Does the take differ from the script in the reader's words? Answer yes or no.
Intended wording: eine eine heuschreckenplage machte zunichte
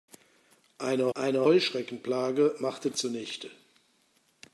no